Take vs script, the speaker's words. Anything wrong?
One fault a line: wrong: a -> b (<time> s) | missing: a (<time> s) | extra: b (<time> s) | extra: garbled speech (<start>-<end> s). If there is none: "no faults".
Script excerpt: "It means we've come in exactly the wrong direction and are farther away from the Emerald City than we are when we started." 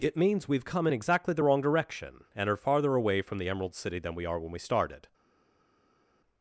no faults